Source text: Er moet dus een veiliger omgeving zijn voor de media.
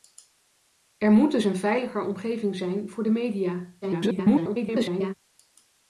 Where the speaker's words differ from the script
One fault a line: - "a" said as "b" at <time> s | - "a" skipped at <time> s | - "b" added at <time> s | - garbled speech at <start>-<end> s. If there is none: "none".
- garbled speech at 3.8-5.1 s